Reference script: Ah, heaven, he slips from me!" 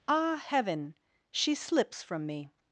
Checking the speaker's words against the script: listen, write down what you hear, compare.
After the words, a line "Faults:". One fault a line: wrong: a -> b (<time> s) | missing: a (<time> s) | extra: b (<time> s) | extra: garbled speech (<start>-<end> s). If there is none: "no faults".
Ah, heaven, she slips from me!"
Faults:
wrong: he -> she (1.3 s)